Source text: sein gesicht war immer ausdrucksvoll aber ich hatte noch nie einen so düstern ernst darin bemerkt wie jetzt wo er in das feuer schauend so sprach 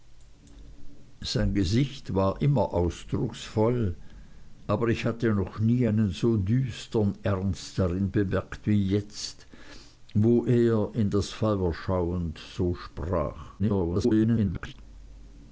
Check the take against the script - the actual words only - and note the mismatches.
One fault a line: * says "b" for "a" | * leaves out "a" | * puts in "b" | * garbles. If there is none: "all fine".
* garbles